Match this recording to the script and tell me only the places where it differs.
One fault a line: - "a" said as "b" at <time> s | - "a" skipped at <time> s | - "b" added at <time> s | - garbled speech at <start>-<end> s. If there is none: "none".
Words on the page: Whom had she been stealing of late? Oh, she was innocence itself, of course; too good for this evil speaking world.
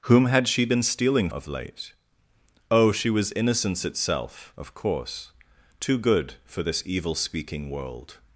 none